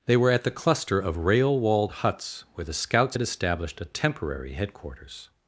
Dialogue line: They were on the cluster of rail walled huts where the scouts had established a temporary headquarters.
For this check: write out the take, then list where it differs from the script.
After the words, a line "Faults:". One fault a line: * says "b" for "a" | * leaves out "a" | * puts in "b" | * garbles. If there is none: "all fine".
They were at the cluster of rail walled huts where the scouts had established a temporary headquarters.
Faults:
* says "at" for "on"